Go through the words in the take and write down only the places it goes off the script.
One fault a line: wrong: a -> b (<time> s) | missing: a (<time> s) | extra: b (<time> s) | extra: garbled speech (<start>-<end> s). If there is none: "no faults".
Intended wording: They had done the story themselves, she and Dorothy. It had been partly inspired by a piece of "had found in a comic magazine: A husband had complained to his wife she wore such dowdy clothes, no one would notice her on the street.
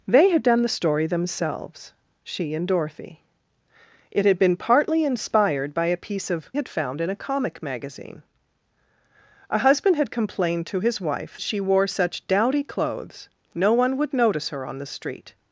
no faults